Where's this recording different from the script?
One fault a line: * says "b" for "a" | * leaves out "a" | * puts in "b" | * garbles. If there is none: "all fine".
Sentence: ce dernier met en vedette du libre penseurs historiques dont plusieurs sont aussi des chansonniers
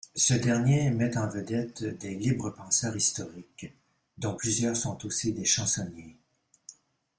* says "des" for "du"